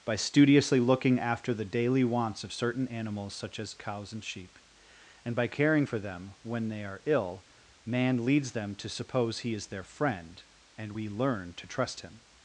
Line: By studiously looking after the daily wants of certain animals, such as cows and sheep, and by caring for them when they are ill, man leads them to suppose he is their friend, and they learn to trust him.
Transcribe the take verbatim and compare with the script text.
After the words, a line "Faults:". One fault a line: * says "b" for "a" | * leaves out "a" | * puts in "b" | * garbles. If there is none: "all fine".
By studiously looking after the daily wants of certain animals, such as cows and sheep, and by caring for them when they are ill, man leads them to suppose he is their friend, and we learn to trust him.
Faults:
* says "we" for "they"